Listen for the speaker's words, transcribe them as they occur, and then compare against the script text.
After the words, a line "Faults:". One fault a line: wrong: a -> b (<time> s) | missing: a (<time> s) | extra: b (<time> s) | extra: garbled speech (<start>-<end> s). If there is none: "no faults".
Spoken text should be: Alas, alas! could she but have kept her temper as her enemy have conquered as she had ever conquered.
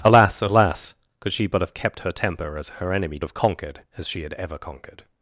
Alas, alas! could she but have kept her temper as her enemy have conquered as she had ever conquered.
Faults:
no faults